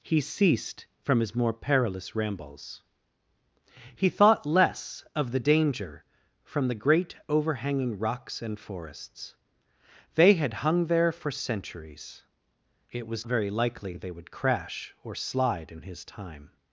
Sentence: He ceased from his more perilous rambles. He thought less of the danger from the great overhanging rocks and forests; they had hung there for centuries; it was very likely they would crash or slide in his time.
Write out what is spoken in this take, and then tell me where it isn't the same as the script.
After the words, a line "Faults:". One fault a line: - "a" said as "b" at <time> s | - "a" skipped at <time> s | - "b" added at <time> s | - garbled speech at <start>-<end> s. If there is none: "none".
He ceased from his more perilous rambles. He thought less of the danger from the great overhanging rocks and forests; they had hung there for centuries; it was very likely they would crash or slide in his time.
Faults:
none